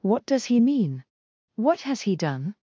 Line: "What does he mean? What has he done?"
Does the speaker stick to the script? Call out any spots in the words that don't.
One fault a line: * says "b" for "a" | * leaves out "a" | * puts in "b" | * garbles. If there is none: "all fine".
all fine